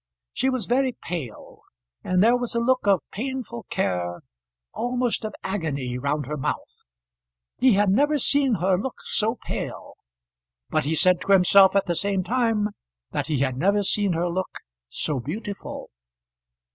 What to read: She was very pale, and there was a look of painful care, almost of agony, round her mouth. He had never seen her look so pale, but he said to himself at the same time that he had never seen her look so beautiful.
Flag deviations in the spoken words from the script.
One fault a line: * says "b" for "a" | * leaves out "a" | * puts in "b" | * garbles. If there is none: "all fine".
all fine